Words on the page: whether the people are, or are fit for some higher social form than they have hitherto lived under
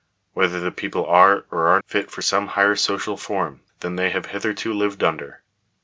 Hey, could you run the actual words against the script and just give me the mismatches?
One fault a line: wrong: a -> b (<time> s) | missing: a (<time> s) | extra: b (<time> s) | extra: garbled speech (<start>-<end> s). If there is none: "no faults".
no faults